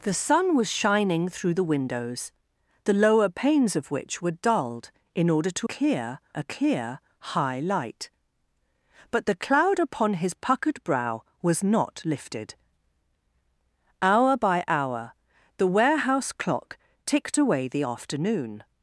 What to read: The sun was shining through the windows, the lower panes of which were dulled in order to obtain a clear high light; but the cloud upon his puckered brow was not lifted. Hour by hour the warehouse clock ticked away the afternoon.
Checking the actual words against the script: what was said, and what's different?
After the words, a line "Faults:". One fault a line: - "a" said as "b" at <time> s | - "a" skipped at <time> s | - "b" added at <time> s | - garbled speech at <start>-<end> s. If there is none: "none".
The sun was shining through the windows, the lower panes of which were dulled in order to clear a clear high light; but the cloud upon his puckered brow was not lifted. Hour by hour the warehouse clock ticked away the afternoon.
Faults:
- "obtain" said as "clear" at 5.6 s